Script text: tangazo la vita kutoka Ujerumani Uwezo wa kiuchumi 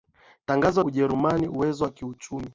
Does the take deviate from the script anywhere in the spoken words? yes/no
yes